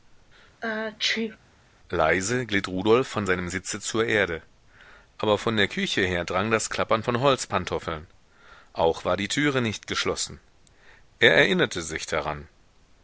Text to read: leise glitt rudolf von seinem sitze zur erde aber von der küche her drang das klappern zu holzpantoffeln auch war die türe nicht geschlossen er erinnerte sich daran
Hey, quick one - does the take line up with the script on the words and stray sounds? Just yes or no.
no